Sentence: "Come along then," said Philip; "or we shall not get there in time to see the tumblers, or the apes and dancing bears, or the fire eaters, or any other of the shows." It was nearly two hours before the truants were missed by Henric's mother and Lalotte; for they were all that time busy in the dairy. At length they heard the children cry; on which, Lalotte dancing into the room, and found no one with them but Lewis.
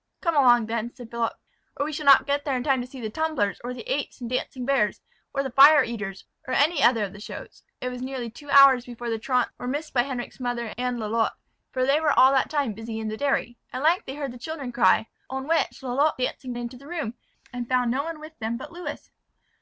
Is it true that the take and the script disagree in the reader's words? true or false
false